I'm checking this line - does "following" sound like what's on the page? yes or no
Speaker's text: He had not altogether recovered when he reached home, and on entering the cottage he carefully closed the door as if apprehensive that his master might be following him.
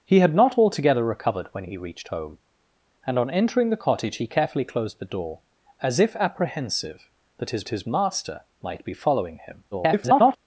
yes